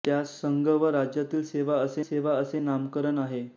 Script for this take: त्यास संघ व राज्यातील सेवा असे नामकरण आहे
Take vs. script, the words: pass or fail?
fail